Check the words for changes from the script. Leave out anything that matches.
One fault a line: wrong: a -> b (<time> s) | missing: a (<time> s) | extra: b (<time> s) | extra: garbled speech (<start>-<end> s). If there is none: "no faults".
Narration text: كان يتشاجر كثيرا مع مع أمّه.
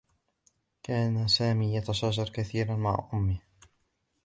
extra: سامي (1.3 s)
missing: مع (3.1 s)